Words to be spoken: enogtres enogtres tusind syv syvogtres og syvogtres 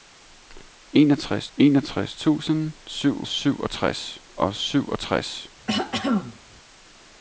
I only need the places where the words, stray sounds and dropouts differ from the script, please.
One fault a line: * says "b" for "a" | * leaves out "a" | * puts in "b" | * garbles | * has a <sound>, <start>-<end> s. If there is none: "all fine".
* has a throat clearing, 5.7-6.4 s